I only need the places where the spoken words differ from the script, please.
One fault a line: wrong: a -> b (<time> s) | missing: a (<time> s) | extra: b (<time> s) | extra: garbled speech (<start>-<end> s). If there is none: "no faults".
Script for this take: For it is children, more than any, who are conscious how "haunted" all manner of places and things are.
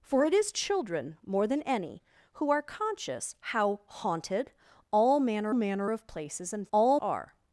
extra: manner (5.5 s)
wrong: things -> all (6.7 s)